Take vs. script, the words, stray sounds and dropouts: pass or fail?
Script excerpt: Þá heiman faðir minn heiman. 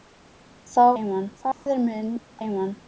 fail